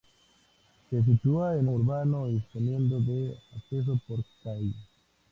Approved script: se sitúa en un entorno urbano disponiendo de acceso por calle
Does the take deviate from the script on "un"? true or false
true